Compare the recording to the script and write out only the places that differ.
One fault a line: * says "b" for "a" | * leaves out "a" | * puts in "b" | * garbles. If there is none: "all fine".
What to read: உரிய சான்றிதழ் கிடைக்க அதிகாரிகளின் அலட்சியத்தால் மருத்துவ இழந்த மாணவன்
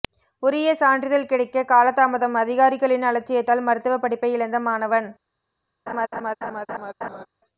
* puts in "காலதாமதம்"
* puts in "படிப்பை"